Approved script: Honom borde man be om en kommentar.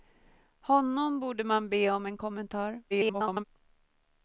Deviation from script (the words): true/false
true